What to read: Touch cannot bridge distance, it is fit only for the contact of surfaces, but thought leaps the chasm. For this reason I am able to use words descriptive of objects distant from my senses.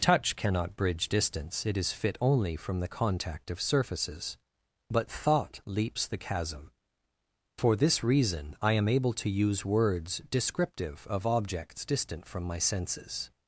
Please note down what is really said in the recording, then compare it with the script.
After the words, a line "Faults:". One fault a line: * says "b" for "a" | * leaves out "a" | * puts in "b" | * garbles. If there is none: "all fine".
Touch cannot bridge distance, it is fit only from the contact of surfaces, but thought leaps the chasm. For this reason I am able to use words descriptive of objects distant from my senses.
Faults:
* says "from" for "for"